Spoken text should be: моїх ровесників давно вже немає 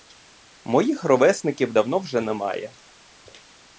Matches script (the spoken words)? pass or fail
pass